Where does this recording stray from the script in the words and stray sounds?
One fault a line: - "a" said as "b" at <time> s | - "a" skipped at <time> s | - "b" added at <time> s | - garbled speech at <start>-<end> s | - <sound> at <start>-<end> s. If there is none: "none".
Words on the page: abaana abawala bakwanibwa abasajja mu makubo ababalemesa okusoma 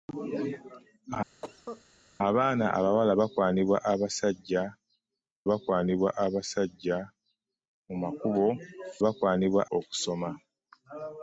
- cough at 1.4-1.8 s
- "bakwanibwa abasajja" added at 5.5 s
- "ababalemesa" said as "bakwanibwa" at 9.0 s